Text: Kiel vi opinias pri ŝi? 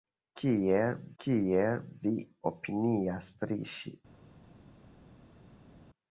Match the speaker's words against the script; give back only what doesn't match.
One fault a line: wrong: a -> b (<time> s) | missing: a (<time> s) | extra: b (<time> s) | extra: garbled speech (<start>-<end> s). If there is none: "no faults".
extra: kiel (1.2 s)